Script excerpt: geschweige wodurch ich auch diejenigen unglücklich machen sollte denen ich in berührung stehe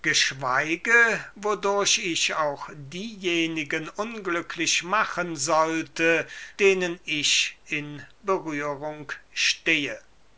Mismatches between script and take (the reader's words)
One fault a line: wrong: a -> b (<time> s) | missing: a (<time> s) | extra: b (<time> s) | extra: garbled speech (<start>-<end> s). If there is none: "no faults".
no faults